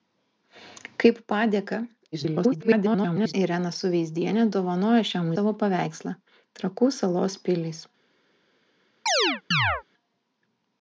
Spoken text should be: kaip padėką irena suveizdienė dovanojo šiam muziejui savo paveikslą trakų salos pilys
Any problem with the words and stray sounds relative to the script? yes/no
yes